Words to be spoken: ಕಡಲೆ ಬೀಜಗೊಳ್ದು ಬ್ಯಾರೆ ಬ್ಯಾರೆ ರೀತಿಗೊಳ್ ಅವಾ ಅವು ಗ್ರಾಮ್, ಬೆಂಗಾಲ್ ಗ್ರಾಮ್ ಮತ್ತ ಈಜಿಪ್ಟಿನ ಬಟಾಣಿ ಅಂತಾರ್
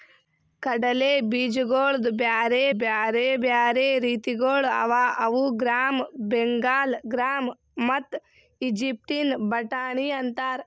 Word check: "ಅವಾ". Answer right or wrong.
right